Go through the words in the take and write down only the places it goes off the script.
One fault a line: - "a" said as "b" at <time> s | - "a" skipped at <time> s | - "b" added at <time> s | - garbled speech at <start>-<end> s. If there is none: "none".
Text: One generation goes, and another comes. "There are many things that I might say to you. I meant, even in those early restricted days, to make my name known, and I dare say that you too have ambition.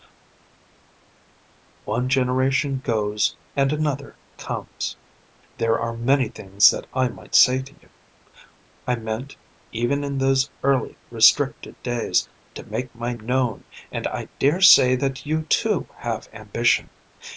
- "name" skipped at 13.1 s